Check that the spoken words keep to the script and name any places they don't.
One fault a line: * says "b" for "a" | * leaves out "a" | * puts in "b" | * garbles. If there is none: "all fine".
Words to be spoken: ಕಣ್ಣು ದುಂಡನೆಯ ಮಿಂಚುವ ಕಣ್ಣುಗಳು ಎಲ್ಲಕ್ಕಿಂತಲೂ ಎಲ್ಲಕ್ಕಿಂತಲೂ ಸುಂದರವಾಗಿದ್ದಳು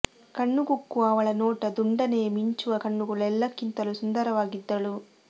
* puts in "ಕುಕ್ಕುವ ಅವಳ ನೋಟ"
* leaves out "ಎಲ್ಲಕ್ಕಿಂತಲೂ"